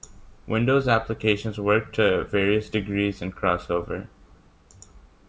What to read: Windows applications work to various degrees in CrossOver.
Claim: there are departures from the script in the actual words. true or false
false